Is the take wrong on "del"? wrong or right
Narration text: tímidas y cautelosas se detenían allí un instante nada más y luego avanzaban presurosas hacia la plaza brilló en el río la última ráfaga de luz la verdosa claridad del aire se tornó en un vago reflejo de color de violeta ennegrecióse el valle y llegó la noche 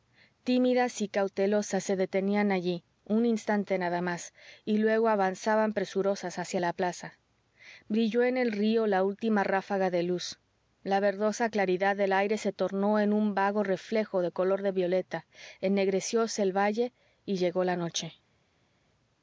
right